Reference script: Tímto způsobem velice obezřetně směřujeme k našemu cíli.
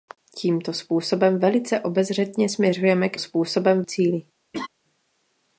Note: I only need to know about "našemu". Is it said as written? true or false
false